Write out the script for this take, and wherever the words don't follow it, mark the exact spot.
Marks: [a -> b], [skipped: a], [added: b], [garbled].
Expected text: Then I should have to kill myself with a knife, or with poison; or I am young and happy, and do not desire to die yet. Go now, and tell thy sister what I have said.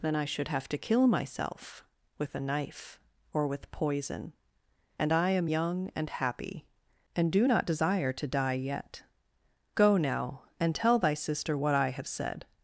Then I should have to kill myself with a knife, or with poison; [or -> and] I am young and happy, and do not desire to die yet. Go now, and tell thy sister what I have said.